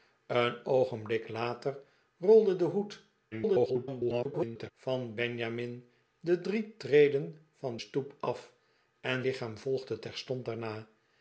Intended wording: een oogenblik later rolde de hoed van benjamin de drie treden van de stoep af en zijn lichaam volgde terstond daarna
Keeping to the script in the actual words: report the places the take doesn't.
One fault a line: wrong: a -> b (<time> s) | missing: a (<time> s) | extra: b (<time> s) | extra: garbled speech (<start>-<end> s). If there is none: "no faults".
extra: garbled speech (3.3-4.7 s)
missing: de (7.8 s)
missing: zijn (9.3 s)